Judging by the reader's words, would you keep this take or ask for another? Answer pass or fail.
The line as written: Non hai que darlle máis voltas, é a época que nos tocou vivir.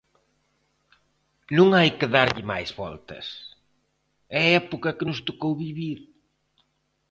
pass